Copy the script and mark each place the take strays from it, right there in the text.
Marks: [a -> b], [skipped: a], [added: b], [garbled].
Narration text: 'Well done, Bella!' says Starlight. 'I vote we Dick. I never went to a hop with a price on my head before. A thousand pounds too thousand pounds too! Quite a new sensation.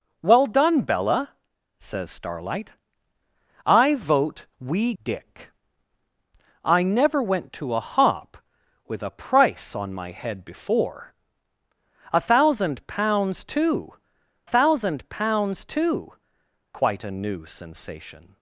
'Well done, Bella!' says Starlight. 'I vote we Dick. I never went to a hop with a price on my head before. A thousand pounds too thousand pounds too! Quite a new sensation.